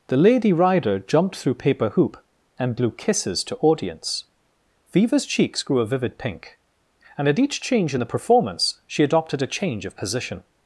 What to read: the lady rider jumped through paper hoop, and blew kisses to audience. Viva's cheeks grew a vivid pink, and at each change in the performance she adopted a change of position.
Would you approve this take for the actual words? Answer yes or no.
yes